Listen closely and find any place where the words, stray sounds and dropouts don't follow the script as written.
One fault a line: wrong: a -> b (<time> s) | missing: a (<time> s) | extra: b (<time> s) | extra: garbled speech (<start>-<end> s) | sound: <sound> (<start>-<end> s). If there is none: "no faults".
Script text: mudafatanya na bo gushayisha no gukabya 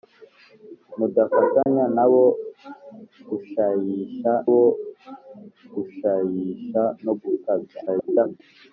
sound: dropout (1.6-1.7 s)
extra: bo gushayisha (4.5 s)
extra: garbled speech (7.9-8.4 s)